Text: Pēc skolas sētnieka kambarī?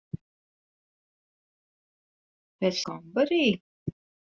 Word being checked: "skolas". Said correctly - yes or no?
no